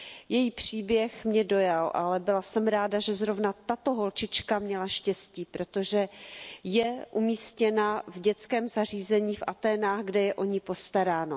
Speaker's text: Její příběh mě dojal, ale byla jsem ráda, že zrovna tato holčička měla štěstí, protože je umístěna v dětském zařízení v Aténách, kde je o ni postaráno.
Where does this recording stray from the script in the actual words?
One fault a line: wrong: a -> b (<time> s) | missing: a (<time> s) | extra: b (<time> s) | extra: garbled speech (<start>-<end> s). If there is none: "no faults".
no faults